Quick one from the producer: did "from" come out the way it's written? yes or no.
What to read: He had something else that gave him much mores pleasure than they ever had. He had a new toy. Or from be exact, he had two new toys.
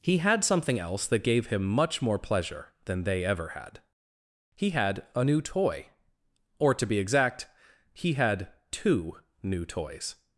no